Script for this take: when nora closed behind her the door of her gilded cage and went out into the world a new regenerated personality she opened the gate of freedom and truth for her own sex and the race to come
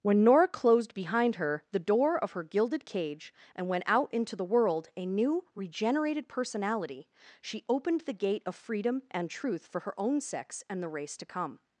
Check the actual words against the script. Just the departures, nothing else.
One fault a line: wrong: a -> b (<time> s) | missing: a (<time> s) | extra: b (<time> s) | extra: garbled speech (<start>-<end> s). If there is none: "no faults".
no faults